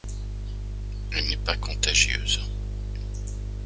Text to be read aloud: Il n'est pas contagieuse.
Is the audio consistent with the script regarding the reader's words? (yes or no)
no